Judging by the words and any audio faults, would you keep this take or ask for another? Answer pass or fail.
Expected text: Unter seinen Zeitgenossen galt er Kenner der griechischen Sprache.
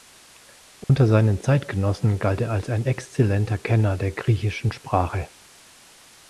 fail